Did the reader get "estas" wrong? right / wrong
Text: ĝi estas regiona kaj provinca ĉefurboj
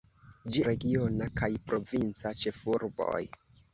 wrong